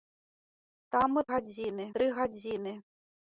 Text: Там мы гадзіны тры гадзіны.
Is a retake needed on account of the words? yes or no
no